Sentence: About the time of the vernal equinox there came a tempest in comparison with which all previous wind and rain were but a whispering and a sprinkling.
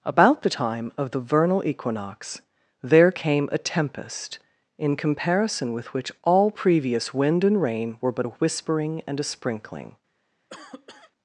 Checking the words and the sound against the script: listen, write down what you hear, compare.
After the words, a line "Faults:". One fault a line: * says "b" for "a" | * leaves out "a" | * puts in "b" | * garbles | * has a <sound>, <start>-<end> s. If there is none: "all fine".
About the time of the vernal equinox there came a tempest in comparison with which all previous wind and rain were but a whispering and a sprinkling.
Faults:
* has a cough, 10.5-11.1 s